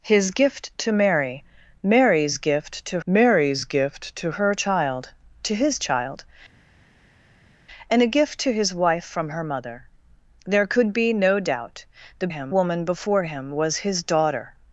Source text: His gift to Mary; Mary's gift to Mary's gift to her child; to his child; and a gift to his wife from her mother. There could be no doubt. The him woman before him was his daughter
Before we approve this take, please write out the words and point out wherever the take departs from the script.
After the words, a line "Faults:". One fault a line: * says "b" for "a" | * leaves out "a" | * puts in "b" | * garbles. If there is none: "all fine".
His gift to Mary; Mary's gift to Mary's gift to her child; to his child; and a gift to his wife from her mother. There could be no doubt. The him woman before him was his daughter
Faults:
all fine